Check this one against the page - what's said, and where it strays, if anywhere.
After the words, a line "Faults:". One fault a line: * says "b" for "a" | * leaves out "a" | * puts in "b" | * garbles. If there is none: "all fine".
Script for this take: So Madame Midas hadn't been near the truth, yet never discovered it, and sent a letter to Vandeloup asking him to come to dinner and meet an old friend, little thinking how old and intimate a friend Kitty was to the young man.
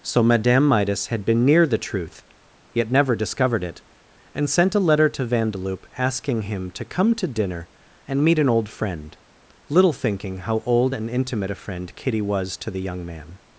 So Madame Midas had been near the truth, yet never discovered it, and sent a letter to Vandeloup asking him to come to dinner and meet an old friend, little thinking how old and intimate a friend Kitty was to the young man.
Faults:
* says "had" for "hadn't"